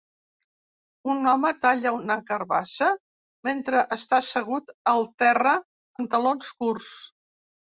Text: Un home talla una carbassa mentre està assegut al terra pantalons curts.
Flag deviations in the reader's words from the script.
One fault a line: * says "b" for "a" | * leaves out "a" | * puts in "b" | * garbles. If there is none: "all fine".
all fine